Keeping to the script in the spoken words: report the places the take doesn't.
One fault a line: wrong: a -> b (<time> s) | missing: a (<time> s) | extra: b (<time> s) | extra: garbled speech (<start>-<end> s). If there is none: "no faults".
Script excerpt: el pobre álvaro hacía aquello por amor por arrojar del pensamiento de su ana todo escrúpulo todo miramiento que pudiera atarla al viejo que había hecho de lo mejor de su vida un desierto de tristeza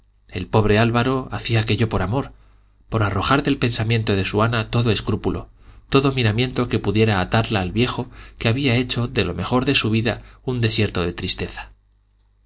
no faults